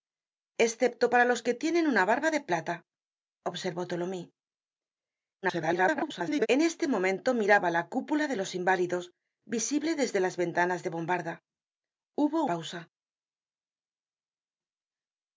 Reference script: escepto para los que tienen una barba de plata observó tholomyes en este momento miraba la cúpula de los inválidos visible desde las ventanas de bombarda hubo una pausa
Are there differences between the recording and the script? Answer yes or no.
yes